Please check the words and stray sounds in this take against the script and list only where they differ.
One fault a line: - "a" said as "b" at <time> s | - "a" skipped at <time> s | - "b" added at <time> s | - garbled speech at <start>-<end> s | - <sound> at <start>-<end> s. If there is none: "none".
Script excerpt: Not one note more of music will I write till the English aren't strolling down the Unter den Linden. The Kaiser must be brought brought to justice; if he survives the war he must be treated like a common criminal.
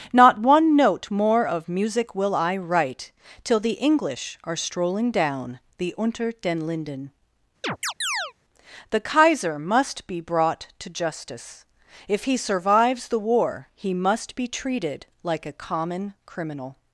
- "aren't" said as "are" at 4.4 s
- chirp at 7.6-8.3 s
- "brought" skipped at 10.7 s